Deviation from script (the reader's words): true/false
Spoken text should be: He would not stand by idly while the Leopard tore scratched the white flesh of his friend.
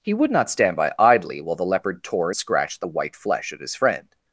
false